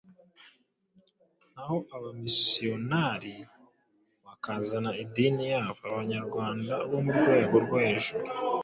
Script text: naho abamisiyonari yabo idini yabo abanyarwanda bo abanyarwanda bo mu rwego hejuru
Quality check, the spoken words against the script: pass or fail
fail